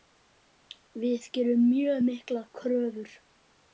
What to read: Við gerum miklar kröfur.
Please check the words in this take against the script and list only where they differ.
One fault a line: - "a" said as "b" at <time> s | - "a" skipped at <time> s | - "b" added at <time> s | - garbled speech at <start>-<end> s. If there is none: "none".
- "mjög" added at 1.7 s